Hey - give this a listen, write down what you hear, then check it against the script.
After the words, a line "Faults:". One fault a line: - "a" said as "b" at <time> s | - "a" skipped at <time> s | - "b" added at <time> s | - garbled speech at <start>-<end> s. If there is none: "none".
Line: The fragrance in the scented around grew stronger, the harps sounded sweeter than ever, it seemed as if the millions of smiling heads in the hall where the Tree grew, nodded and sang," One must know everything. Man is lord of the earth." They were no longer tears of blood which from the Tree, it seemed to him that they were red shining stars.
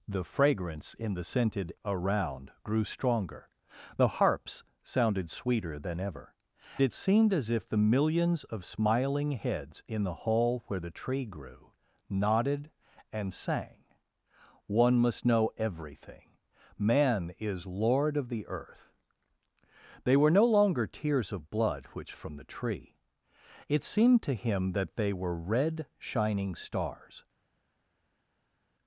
The fragrance in the scented around grew stronger, the harps sounded sweeter than ever, it seemed as if the millions of smiling heads in the hall where the Tree grew, nodded and sang," One must know everything. Man is lord of the earth." They were no longer tears of blood which from the Tree, it seemed to him that they were red shining stars.
Faults:
none